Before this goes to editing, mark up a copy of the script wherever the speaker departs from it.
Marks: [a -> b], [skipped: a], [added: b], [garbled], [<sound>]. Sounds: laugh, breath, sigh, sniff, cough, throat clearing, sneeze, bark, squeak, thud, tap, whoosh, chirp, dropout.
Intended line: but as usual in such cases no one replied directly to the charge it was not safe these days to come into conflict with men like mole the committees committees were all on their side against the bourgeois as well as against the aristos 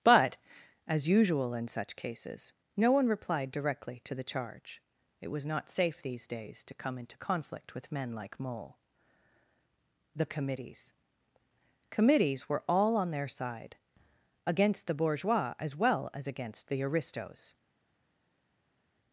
but as usual in such cases no one replied directly to the charge it was not safe these days to come into conflict with men like mole the committees committees were all on their side against the bourgeois as well as against the aristos